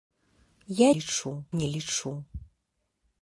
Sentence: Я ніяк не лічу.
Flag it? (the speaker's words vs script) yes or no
yes